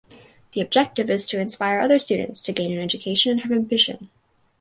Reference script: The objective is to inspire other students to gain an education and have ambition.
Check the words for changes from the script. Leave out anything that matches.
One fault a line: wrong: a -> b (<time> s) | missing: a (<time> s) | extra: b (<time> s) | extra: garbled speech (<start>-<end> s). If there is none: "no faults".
no faults